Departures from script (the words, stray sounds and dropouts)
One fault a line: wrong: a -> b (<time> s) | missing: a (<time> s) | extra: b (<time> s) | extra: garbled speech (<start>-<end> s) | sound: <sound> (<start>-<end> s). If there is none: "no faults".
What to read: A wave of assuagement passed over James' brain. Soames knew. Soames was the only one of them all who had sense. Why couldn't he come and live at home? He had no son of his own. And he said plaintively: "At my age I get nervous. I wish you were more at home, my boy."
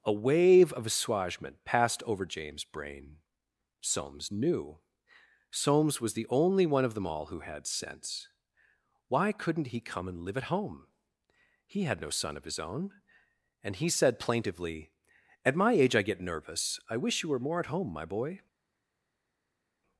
no faults